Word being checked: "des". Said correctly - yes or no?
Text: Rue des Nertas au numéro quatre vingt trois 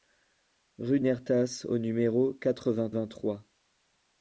no